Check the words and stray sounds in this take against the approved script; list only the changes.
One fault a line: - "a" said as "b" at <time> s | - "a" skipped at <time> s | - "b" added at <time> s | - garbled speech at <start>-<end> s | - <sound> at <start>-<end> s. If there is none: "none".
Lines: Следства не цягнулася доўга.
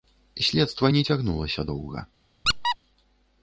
- squeak at 2.4-2.8 s